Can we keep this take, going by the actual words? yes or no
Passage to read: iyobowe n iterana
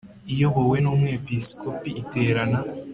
no